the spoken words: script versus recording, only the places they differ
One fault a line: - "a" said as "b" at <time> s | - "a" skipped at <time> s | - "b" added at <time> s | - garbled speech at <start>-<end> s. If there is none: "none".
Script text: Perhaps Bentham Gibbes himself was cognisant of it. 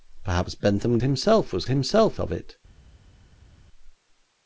- "Gibbes" skipped at 1.0 s
- "cognisant" said as "himself" at 1.7 s